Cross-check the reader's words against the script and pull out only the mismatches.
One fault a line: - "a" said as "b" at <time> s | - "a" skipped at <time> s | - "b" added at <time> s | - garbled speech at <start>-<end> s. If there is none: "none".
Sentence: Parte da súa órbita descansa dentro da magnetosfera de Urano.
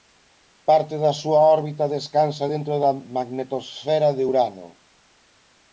none